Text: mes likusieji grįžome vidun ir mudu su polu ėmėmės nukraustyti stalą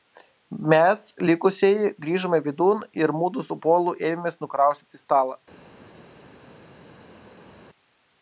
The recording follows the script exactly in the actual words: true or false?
true